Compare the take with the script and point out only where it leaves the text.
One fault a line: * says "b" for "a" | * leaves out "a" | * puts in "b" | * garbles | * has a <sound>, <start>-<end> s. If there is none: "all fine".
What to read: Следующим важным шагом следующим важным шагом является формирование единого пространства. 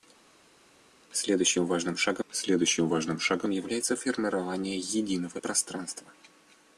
all fine